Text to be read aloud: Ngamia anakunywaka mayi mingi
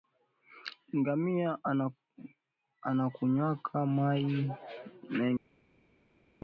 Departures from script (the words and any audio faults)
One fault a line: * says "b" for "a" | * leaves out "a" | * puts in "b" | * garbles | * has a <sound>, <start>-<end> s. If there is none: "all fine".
all fine